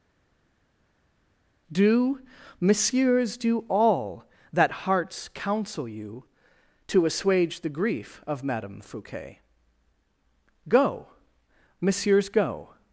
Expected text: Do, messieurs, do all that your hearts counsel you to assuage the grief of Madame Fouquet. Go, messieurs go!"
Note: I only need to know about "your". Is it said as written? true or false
false